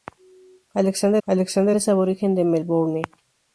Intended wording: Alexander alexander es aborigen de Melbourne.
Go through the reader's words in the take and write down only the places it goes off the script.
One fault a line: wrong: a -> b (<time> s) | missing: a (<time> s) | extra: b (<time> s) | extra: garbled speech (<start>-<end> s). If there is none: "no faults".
no faults